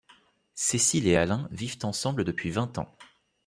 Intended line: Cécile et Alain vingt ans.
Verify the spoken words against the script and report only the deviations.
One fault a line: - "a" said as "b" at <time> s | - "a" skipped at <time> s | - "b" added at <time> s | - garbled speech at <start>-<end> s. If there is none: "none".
- "vivent ensemble depuis" added at 1.5 s